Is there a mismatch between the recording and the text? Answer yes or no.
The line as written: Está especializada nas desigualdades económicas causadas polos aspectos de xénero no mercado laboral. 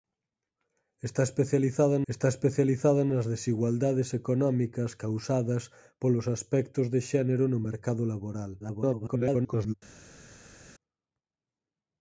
yes